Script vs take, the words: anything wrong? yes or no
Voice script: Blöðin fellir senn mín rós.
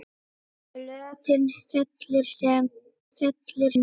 yes